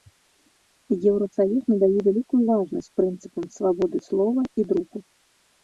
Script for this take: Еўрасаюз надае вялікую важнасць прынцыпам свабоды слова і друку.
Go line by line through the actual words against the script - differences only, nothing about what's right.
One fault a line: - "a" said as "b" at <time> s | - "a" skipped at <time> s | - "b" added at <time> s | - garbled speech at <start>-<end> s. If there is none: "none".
none